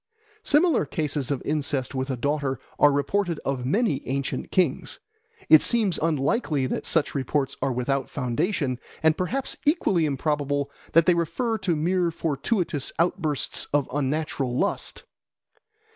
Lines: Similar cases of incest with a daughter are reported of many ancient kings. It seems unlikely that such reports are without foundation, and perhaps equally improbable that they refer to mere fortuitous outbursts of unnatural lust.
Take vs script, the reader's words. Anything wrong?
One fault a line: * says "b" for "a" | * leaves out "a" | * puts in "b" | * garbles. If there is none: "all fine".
all fine